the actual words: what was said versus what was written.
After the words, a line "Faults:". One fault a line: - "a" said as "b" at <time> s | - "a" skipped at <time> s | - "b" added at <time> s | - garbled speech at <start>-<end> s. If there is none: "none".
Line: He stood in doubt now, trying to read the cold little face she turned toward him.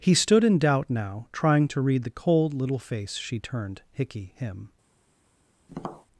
He stood in doubt now, trying to read the cold little face she turned hickey him.
Faults:
- "toward" said as "hickey" at 3.9 s